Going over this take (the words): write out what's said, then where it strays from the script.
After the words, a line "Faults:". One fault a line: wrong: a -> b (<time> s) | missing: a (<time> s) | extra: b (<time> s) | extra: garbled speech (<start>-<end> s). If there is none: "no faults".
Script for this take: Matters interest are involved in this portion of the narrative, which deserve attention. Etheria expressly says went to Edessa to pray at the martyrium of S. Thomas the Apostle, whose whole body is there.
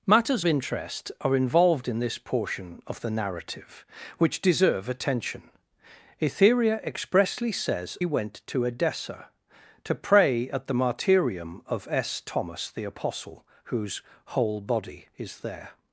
Matters interest are involved in this portion of the narrative, which deserve attention. Etheria expressly says went to Edessa to pray at the martyrium of S. Thomas the Apostle, whose whole body is there.
Faults:
no faults